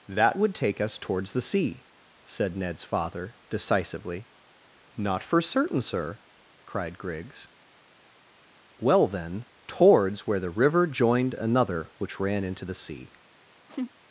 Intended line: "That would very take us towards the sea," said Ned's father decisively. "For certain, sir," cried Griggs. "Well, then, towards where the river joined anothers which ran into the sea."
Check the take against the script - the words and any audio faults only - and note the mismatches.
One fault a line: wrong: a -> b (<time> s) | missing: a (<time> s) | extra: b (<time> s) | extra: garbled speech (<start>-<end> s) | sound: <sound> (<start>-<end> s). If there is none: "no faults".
missing: very (0.6 s)
extra: Not (5.0 s)
wrong: anothers -> another (11.3 s)
sound: laugh (13.7-13.9 s)